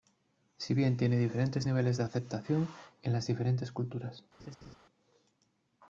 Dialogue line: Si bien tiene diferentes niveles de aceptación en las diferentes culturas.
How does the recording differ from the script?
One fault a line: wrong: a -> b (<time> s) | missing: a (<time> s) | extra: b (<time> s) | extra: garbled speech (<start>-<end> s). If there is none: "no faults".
no faults